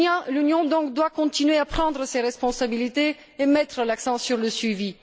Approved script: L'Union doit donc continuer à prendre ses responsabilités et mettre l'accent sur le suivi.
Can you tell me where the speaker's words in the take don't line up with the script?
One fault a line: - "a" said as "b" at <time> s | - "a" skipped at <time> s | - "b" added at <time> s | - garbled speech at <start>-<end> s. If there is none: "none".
none